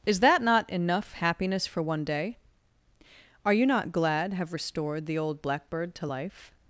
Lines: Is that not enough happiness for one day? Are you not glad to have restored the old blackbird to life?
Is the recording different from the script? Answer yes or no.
yes